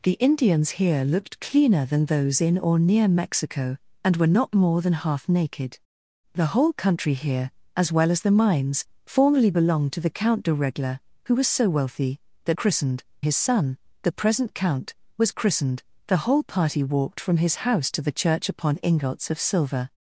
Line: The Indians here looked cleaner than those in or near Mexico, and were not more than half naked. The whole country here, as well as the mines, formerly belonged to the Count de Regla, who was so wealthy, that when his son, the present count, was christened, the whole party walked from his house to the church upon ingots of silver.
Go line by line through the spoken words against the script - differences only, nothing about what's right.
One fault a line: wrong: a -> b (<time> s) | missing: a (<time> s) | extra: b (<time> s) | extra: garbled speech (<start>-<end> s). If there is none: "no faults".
wrong: when -> christened (12.5 s)